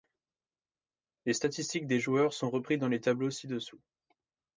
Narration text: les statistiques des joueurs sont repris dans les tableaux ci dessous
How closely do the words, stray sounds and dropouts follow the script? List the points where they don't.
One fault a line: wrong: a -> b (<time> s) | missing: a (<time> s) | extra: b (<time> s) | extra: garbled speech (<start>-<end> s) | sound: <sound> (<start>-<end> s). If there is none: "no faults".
no faults